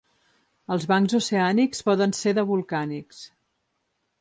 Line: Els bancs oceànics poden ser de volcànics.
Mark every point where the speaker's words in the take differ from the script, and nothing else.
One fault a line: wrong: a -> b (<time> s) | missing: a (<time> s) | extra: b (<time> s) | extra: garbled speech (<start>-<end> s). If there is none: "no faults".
no faults